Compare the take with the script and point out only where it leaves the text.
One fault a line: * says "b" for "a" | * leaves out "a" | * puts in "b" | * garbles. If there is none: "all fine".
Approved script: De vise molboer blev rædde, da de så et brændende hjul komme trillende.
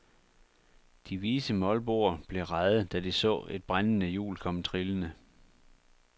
all fine